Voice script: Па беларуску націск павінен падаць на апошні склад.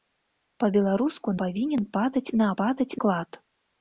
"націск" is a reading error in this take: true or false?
true